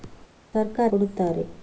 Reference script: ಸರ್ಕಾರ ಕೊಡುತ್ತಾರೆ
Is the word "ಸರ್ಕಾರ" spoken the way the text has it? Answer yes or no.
yes